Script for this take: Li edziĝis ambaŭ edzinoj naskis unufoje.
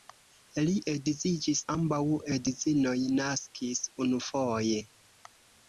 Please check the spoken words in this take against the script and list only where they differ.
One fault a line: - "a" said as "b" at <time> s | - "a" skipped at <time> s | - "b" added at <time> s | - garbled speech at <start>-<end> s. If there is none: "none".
none